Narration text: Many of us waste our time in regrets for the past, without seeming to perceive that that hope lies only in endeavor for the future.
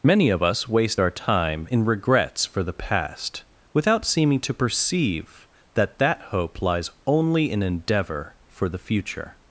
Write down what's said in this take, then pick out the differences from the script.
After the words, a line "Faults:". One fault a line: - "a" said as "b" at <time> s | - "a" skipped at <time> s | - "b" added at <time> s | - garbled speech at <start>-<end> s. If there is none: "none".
Many of us waste our time in regrets for the past, without seeming to perceive that that hope lies only in endeavor for the future.
Faults:
none